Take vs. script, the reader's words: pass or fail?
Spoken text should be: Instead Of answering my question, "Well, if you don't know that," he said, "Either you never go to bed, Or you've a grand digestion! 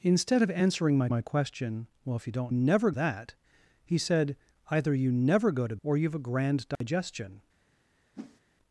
fail